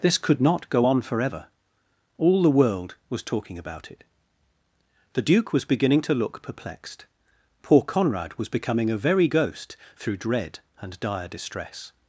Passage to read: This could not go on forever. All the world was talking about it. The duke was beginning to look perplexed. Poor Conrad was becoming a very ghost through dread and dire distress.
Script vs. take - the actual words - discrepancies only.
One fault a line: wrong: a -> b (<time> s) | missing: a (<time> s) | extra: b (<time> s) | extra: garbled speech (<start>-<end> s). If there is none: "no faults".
no faults